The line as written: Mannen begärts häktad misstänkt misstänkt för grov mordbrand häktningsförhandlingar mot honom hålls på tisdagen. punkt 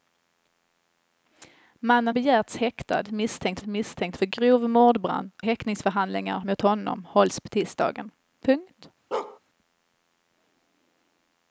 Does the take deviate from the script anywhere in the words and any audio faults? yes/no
yes